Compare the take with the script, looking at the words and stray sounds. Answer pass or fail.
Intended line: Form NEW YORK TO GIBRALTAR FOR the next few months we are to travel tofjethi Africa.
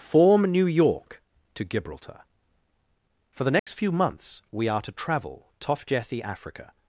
fail